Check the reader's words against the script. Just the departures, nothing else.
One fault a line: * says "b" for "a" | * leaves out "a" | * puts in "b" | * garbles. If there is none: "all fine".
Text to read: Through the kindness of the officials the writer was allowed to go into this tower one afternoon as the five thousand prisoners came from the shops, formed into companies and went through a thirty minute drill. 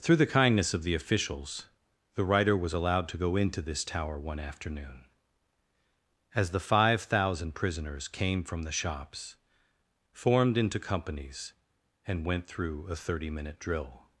all fine